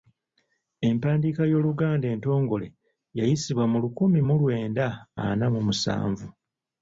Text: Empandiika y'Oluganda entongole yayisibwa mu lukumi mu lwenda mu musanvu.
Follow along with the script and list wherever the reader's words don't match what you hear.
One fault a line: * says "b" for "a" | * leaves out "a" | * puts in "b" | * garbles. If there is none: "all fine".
* puts in "ana"